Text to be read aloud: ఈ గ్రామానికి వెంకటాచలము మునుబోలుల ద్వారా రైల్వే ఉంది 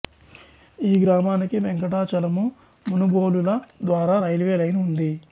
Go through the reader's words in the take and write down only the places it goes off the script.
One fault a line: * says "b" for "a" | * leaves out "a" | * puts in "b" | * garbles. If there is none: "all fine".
* puts in "లైన్"